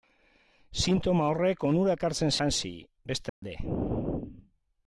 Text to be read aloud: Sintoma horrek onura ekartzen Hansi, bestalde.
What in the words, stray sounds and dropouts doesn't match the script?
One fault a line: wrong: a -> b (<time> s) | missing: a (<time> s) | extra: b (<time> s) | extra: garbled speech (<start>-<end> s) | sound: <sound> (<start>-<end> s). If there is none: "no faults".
sound: dropout (3.3-3.4 s)